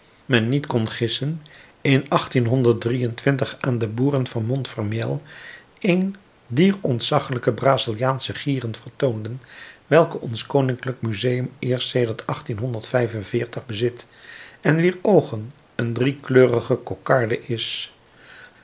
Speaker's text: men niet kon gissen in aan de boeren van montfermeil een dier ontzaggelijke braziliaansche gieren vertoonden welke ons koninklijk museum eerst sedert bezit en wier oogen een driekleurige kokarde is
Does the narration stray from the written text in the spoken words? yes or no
no